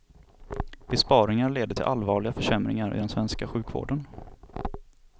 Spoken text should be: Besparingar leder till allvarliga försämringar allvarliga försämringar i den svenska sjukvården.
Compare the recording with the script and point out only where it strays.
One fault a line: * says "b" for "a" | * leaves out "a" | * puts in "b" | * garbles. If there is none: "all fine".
* leaves out "allvarliga försämringar"